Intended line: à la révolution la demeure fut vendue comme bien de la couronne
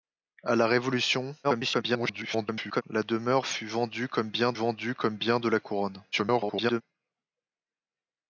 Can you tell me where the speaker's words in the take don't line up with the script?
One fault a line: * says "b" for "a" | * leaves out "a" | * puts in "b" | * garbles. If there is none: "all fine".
* garbles
* puts in "vendue comme bien"
* garbles